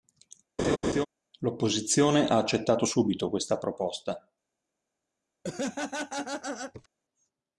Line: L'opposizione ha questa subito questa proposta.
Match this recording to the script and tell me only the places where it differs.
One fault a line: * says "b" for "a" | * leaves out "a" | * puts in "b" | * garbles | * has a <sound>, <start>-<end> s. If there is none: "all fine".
* has a laugh, 0.6-1.1 s
* says "accettato" for "questa"
* has a laugh, 5.4-6.9 s